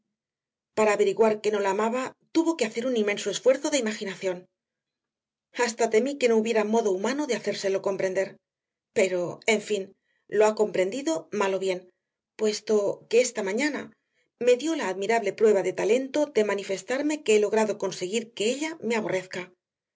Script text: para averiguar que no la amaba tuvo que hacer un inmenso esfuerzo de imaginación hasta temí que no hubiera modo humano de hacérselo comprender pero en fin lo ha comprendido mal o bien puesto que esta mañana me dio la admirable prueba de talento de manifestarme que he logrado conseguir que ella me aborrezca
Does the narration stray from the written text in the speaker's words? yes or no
no